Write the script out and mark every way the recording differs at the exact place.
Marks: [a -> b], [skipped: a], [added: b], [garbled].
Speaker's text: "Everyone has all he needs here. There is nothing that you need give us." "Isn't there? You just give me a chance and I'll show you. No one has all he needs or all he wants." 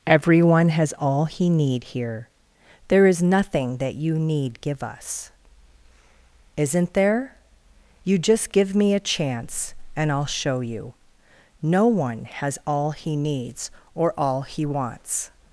"Everyone has all he [needs -> need] here. There is nothing that you need give us." "Isn't there? You just give me a chance and I'll show you. No one has all he needs or all he wants."